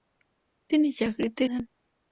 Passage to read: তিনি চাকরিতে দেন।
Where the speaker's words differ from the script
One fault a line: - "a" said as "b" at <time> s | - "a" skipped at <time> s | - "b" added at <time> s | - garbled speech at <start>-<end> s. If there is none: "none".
none